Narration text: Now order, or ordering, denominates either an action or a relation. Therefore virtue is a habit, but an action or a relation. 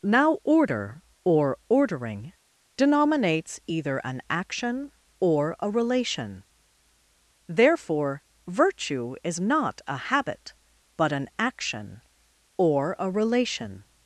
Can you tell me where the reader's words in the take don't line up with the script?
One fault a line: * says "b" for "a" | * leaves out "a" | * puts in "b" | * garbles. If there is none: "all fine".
* puts in "not"